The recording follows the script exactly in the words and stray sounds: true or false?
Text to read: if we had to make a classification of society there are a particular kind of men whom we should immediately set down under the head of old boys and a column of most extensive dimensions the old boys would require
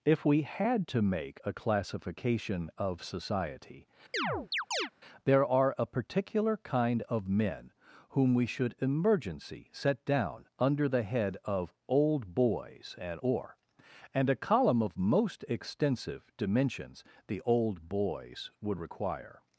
false